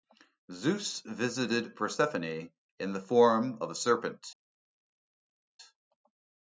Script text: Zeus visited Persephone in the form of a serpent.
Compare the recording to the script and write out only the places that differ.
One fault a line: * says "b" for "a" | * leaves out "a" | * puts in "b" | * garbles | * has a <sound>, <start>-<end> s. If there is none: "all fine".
all fine